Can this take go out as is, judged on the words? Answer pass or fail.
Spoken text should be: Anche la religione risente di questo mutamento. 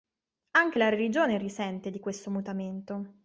pass